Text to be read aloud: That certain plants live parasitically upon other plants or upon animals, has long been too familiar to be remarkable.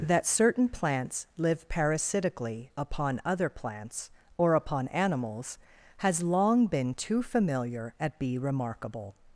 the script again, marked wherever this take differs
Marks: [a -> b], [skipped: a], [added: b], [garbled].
That certain plants live parasitically upon other plants or upon animals, has long been too familiar [to -> at] be remarkable.